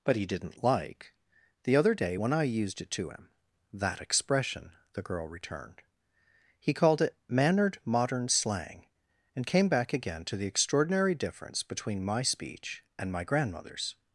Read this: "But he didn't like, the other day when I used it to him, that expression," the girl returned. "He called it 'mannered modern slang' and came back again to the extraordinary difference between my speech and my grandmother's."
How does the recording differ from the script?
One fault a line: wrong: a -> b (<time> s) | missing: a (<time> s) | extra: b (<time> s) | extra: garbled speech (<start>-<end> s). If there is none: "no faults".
no faults